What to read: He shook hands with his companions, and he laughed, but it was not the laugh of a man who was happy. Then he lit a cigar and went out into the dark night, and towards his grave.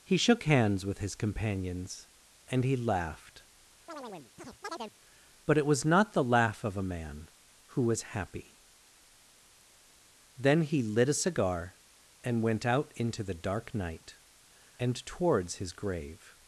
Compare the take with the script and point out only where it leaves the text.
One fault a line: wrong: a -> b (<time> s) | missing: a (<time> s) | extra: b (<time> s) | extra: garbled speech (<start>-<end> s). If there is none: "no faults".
no faults